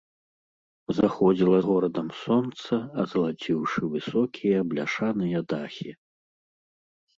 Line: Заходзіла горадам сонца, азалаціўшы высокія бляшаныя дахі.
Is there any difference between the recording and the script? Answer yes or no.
no